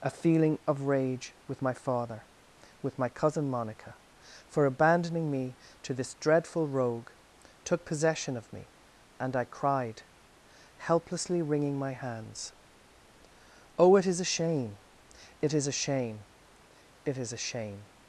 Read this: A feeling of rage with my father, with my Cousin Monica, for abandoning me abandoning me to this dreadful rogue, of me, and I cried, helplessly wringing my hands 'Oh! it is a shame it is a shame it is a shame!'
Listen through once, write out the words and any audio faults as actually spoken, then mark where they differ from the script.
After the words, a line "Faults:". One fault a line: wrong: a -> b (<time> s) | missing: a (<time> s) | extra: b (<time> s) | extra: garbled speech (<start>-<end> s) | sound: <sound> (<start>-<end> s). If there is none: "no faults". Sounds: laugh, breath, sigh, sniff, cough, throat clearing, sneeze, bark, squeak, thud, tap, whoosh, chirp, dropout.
A feeling of rage with my father, with my Cousin Monica, for abandoning me to this dreadful rogue, took possession of me, and I cried, helplessly wringing my hands 'Oh! it is a shame it is a shame it is a shame!'
Faults:
missing: abandoning me (5.6 s)
extra: took possession (7.7 s)